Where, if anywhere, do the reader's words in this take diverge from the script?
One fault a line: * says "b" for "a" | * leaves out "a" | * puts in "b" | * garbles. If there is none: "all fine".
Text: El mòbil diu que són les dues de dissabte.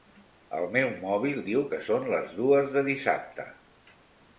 * puts in "meu"